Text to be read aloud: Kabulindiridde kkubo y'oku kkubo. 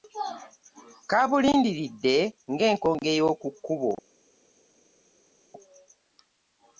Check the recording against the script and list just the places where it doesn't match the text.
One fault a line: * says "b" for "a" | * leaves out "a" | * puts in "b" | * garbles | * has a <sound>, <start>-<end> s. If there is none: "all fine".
* says "ng'enkonge" for "kkubo"